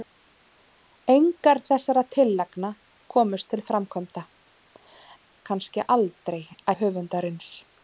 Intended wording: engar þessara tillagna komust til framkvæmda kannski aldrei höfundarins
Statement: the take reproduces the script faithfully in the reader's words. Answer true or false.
true